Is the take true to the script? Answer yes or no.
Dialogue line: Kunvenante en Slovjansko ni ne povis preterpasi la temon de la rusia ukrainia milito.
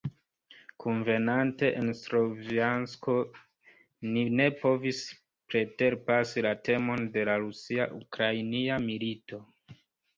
yes